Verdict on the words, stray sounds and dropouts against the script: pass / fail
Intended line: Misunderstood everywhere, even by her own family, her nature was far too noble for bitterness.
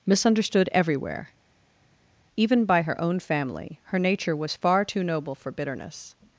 pass